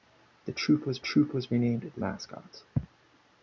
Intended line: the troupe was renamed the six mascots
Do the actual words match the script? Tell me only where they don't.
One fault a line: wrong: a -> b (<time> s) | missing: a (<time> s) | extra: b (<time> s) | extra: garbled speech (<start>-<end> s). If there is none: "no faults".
extra: troupe was (1.0 s)
missing: six (2.0 s)